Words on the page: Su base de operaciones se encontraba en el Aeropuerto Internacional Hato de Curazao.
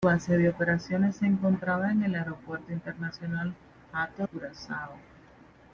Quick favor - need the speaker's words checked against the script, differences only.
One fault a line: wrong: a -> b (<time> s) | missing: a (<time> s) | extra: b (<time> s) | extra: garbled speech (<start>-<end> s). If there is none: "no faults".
missing: de (4.3 s)